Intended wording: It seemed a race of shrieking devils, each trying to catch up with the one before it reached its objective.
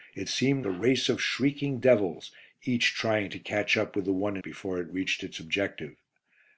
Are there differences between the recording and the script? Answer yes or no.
no